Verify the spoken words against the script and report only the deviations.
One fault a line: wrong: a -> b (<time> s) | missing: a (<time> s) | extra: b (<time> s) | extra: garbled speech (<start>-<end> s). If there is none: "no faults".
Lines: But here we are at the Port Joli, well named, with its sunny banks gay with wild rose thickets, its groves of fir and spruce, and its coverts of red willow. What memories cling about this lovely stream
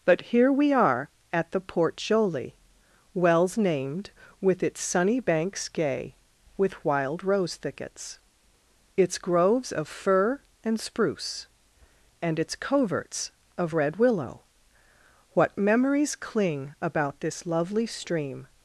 wrong: well -> wells (3.1 s)